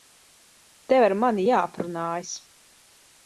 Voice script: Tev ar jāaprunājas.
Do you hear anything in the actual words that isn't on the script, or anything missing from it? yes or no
yes